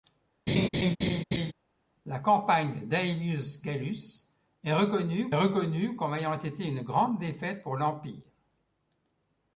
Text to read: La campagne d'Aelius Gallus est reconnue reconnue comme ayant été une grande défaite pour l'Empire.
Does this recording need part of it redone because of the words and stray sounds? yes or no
yes